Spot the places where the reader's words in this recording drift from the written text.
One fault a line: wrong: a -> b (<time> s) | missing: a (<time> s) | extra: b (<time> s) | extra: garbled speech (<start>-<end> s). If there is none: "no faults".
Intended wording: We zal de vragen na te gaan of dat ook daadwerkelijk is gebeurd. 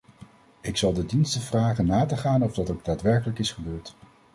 wrong: We -> Ik (0.6 s)
extra: diensten (1.1 s)